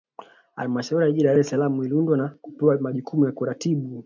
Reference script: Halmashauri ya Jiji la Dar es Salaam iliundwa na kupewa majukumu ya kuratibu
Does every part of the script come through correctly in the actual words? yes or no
no